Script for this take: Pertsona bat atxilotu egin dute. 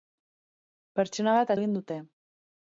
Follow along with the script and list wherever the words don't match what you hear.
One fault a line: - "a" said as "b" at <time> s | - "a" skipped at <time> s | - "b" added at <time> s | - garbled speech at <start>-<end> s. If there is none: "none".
- "atxilotu" skipped at 1.5 s